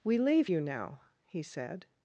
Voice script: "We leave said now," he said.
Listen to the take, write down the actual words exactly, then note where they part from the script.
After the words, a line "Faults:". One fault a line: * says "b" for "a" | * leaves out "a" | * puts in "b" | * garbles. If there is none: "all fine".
"We leave you now," he said.
Faults:
* says "you" for "said"